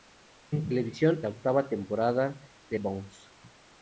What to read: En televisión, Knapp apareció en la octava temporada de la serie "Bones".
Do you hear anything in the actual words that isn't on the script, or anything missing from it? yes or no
yes